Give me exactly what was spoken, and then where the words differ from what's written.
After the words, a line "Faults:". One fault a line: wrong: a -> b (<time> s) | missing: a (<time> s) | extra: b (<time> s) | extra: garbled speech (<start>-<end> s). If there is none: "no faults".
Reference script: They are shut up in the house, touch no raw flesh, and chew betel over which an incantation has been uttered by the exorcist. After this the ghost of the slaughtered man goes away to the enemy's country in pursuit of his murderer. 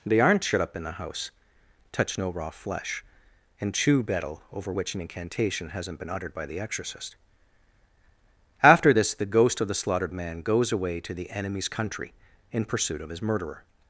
They aren't shut up in the house, touch no raw flesh, and chew betel over which an incantation hasn't been uttered by the exorcist. After this the ghost of the slaughtered man goes away to the enemy's country in pursuit of his murderer.
Faults:
wrong: are -> aren't (0.2 s)
wrong: has -> hasn't (5.7 s)